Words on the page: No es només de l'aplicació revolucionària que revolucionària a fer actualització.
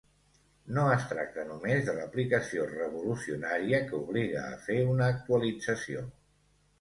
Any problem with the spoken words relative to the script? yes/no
yes